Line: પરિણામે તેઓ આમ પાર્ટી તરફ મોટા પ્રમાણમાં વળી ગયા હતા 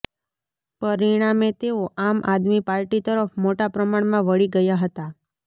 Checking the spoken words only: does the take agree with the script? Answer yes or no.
no